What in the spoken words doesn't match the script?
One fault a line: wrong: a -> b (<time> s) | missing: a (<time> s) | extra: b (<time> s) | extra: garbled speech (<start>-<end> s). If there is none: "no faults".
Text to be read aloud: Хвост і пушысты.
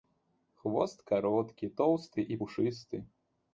extra: кароткі тоўсты (1.1 s)